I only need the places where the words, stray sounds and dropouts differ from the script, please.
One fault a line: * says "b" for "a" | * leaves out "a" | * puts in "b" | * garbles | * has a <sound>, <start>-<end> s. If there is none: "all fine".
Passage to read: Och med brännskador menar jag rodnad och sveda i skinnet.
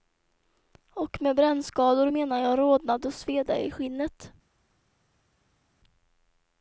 all fine